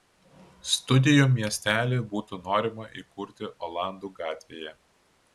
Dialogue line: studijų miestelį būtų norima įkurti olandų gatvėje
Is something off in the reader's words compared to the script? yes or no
no